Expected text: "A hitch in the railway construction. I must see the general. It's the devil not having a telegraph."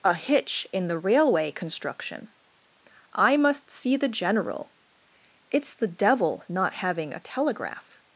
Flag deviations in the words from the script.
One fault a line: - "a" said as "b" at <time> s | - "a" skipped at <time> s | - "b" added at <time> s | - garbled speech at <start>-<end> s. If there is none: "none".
none